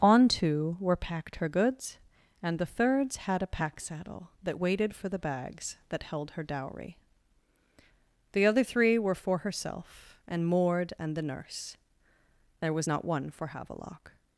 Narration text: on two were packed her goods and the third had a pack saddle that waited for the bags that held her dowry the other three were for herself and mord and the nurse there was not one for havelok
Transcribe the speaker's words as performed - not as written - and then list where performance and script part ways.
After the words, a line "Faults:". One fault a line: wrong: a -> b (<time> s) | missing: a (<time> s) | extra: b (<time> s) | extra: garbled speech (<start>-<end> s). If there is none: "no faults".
on two were packed her goods and the thirds had a pack saddle that waited for the bags that held her dowry the other three were for herself and mord and the nurse there was not one for havelok
Faults:
wrong: third -> thirds (2.6 s)